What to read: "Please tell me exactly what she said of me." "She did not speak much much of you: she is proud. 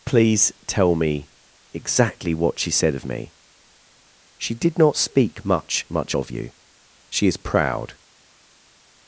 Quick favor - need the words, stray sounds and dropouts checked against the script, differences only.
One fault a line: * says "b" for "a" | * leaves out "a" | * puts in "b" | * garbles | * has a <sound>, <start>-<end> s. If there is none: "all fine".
all fine